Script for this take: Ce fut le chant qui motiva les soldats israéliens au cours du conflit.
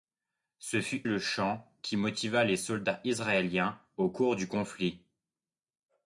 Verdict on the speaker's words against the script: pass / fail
pass